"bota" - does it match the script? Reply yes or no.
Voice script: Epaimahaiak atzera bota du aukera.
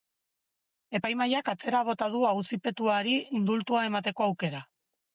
yes